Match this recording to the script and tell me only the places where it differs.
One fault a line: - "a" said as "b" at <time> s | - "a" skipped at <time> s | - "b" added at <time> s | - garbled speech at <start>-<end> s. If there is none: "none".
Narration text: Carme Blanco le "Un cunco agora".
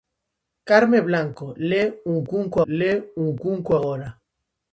- "le Un cunco" added at 2.7 s